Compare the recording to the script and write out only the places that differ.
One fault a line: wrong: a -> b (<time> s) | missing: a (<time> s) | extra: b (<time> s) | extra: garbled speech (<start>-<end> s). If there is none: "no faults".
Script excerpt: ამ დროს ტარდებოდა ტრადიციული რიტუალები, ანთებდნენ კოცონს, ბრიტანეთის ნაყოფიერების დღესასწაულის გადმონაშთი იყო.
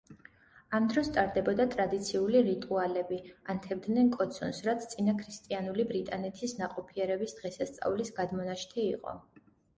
extra: რაც წინაქრისტიანული (4.7 s)